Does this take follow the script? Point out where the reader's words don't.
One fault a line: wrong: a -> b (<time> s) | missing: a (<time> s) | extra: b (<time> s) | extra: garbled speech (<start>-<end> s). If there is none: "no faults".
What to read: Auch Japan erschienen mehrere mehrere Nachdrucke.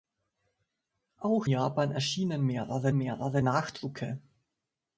no faults